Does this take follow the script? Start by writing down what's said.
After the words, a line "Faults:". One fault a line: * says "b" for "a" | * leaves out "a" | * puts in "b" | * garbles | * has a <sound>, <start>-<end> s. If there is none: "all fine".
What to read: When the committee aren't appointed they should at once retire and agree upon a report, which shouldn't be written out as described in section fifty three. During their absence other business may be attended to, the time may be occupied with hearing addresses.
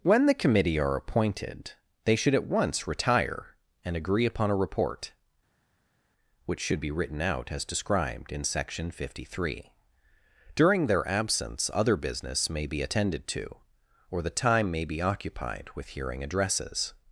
When the committee are appointed they should at once retire and agree upon a report, which should be written out as described in section fifty three. During their absence other business may be attended to, or the time may be occupied with hearing addresses.
Faults:
* says "are" for "aren't"
* says "should" for "shouldn't"
* puts in "or"